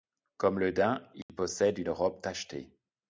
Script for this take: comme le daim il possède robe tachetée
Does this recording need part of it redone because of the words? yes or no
yes